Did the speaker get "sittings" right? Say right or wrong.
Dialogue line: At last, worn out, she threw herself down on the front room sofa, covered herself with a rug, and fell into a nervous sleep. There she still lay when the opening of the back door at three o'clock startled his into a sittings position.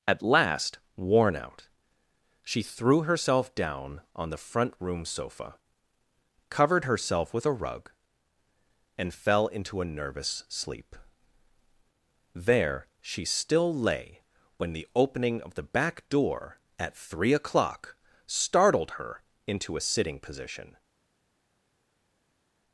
wrong